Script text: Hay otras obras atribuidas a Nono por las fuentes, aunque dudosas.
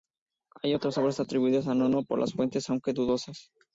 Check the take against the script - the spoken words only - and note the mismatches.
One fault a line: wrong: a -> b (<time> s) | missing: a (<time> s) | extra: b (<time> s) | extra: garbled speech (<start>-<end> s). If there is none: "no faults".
no faults